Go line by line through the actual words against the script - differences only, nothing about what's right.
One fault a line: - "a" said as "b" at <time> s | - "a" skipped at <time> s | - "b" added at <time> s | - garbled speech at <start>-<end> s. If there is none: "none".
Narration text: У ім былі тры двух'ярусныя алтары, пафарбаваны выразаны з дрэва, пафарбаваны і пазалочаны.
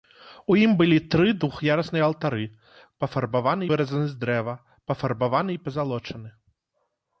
none